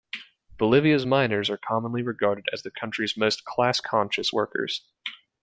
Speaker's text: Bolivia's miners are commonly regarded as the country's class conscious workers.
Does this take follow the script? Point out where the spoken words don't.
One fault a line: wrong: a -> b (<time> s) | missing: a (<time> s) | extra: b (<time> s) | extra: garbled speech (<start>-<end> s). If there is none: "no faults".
extra: most (3.2 s)